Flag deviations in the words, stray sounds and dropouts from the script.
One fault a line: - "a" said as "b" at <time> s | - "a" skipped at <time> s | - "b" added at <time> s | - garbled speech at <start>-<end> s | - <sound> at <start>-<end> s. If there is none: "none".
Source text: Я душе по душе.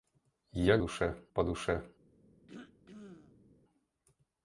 - throat clearing at 2.5-3.5 s